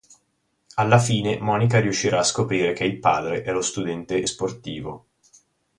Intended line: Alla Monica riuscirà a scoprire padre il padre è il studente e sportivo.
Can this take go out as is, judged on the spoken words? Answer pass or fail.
fail